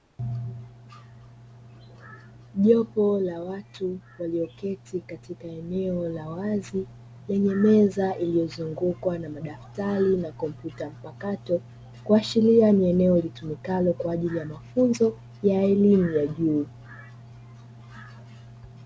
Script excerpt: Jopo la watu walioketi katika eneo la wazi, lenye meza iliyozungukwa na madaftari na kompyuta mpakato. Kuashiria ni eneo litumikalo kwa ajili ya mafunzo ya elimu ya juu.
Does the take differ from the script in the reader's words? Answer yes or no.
no